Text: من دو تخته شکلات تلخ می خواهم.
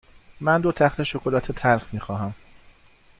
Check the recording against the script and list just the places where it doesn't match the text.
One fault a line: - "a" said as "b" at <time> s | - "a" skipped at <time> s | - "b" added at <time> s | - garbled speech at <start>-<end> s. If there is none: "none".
none